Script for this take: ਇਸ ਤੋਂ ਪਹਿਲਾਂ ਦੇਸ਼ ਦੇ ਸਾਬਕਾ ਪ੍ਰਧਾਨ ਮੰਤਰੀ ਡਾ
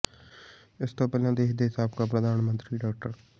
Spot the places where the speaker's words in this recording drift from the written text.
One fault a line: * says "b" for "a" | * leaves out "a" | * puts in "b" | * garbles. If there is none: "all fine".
all fine